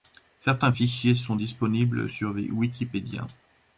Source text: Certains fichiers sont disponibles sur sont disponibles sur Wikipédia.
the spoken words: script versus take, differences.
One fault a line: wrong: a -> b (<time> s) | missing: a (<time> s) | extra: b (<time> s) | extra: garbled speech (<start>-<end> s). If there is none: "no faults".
missing: sont disponibles sur (2.3 s)